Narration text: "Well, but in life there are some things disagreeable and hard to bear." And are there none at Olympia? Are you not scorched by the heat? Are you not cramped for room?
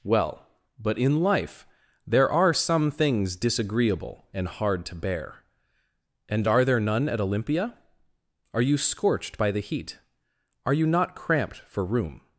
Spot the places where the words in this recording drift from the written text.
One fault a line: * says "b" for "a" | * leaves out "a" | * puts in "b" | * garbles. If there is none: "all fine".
* leaves out "not"